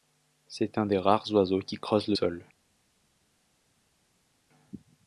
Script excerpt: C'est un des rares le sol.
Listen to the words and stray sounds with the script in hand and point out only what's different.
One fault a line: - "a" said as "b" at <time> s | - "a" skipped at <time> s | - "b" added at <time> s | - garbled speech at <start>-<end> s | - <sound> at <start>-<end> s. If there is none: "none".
- "oiseaux qui creuse" added at 1.3 s